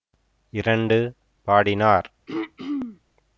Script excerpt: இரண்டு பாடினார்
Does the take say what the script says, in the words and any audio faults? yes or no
no